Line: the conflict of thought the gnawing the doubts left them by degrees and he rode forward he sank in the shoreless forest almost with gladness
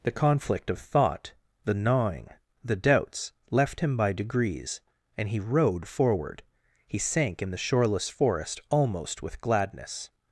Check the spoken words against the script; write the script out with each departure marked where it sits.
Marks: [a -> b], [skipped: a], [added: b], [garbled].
the conflict of thought the gnawing the doubts left [them -> him] by degrees and he rode forward he sank in the shoreless forest almost with gladness